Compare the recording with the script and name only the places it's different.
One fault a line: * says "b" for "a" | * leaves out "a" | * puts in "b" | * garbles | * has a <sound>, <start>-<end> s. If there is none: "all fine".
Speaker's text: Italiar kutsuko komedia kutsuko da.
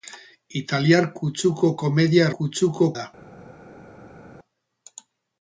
all fine